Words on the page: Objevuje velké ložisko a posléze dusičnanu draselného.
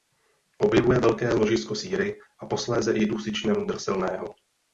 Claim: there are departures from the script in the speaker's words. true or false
true